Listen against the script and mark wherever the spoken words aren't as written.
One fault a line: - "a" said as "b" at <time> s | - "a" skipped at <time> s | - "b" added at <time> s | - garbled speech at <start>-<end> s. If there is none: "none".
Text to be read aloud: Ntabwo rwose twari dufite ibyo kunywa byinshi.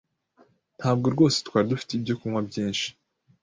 none